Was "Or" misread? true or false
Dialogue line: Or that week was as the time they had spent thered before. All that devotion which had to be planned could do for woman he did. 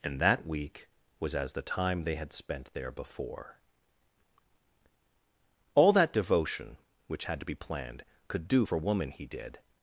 true